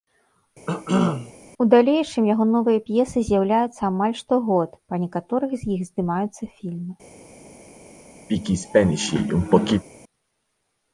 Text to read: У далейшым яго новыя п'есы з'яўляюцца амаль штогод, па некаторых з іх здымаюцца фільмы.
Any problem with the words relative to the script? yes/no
no